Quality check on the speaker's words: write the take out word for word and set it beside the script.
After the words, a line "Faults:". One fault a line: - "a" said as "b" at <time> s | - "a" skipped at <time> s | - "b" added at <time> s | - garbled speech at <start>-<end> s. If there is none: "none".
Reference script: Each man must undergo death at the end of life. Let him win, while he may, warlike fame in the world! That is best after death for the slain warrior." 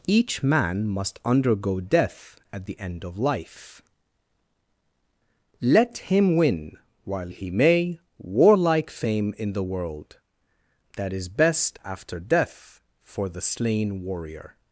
Each man must undergo death at the end of life. Let him win, while he may, warlike fame in the world! That is best after death for the slain warrior."
Faults:
none